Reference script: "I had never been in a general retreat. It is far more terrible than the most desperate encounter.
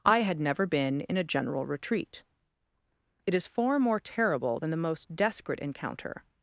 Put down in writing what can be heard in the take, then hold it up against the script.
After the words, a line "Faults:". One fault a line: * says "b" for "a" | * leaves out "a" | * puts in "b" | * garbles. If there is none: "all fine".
"I had never been in a general retreat. It is far more terrible than the most desperate encounter.
Faults:
all fine